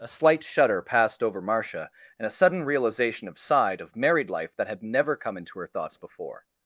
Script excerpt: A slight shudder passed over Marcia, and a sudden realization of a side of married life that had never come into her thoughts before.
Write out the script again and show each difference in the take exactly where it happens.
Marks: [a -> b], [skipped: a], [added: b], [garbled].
A slight shudder passed over Marcia, and a sudden realization of [skipped: a] side of married life that had never come into her thoughts before.